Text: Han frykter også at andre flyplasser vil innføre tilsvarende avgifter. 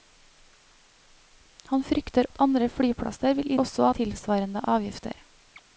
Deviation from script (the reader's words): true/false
true